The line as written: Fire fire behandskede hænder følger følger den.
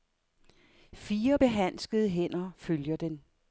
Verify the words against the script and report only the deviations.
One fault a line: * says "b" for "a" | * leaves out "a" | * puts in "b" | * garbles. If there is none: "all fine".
* leaves out "fire"
* leaves out "følger"